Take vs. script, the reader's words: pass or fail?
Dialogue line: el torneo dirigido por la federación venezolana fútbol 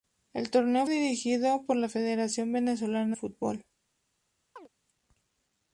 pass